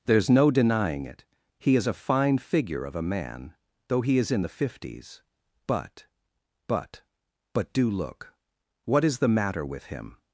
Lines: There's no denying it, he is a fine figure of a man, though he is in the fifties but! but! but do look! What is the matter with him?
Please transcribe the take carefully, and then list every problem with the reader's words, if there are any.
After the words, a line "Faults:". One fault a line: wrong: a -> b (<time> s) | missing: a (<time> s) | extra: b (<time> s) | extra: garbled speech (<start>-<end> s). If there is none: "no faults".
There's no denying it, he is a fine figure of a man, though he is in the fifties but! but! but do look! What is the matter with him?
Faults:
no faults